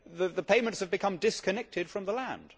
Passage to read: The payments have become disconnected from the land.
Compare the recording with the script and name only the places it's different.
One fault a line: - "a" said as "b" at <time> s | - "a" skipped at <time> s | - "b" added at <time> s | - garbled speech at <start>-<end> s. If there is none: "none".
none